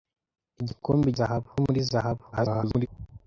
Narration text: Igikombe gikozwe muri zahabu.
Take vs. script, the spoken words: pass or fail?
fail